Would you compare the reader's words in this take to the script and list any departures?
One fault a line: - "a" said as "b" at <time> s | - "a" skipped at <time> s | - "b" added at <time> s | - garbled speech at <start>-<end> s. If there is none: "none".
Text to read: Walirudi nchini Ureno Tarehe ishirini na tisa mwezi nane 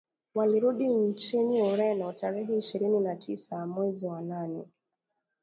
- "wa" added at 4.0 s